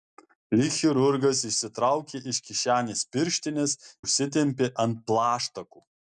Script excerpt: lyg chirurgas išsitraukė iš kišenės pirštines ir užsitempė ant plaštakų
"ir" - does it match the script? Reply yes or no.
no